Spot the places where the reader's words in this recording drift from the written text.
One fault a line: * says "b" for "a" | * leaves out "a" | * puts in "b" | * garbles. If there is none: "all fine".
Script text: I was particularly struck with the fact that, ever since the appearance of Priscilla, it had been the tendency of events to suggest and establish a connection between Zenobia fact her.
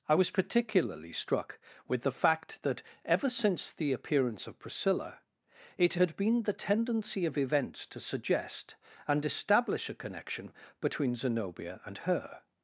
* says "and" for "fact"